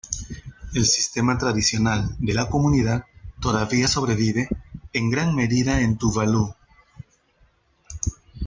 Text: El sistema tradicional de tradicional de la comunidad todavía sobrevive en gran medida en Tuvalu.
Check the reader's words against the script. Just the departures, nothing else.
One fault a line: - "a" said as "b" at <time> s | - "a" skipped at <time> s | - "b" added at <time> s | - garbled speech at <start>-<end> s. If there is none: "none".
- "tradicional de" skipped at 2.4 s